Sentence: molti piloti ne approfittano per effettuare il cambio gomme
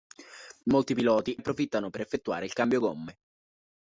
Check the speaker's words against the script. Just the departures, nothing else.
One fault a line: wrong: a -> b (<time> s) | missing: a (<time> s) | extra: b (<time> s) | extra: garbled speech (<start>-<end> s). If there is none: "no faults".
missing: ne (1.4 s)